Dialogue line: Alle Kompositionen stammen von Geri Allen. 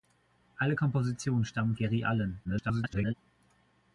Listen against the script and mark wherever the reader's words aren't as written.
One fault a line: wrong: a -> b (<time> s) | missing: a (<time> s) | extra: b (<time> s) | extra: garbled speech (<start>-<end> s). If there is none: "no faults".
missing: von (1.7 s)
extra: garbled speech (2.4-3.1 s)